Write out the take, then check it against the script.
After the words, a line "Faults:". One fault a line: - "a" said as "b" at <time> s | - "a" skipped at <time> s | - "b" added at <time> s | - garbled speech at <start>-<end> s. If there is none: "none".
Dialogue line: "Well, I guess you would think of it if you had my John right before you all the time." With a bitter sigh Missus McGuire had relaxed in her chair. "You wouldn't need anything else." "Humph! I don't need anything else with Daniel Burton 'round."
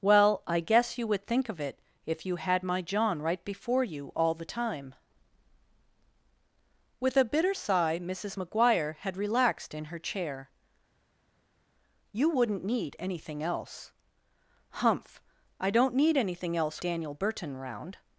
"Well, I guess you would think of it if you had my John right before you all the time." With a bitter sigh Missus McGuire had relaxed in her chair. "You wouldn't need anything else." "Humph! I don't need anything else Daniel Burton 'round."
Faults:
- "with" skipped at 16.8 s